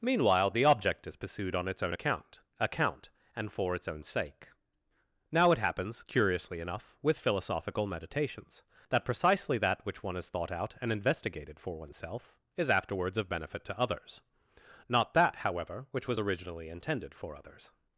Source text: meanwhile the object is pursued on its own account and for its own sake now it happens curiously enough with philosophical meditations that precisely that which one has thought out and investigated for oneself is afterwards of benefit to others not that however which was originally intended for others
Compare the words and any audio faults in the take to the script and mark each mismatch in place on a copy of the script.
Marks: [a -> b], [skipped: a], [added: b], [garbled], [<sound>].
meanwhile the object is pursued on its own account [added: account] and for its own sake now it happens curiously enough with philosophical meditations that precisely that which one has thought out and investigated for oneself is afterwards of benefit to others not that however which was originally intended for others